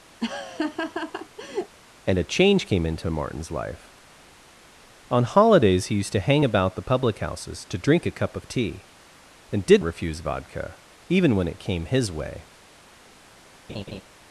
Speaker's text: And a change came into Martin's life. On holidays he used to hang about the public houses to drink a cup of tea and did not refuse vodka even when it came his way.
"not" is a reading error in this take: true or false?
true